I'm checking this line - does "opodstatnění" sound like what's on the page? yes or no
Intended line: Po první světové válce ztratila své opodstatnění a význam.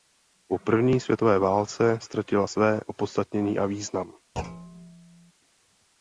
yes